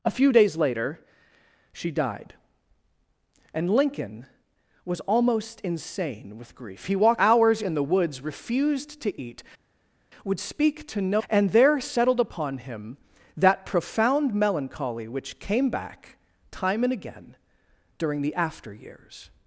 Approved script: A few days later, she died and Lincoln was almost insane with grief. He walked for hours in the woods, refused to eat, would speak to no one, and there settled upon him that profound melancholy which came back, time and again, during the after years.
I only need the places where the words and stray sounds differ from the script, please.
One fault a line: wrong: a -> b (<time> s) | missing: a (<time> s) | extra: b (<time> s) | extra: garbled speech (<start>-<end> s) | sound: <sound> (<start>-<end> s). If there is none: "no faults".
missing: for (7.2 s)
missing: one (11.2 s)